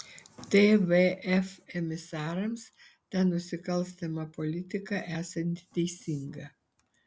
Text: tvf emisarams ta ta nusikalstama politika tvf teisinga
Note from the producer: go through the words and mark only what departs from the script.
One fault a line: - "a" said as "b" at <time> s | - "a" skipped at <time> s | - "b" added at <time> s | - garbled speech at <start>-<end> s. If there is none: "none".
- "ta" skipped at 3.2 s
- "tvf" said as "esanti" at 5.2 s